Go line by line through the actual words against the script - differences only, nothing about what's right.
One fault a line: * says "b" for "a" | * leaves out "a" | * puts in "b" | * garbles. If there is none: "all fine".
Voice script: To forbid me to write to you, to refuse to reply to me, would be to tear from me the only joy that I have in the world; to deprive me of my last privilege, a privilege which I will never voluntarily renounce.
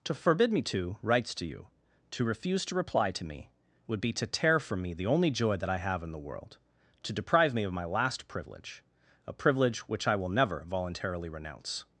* says "writes" for "write"